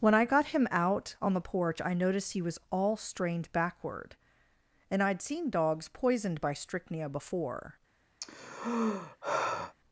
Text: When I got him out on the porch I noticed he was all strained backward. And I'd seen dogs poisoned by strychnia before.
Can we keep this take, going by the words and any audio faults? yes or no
no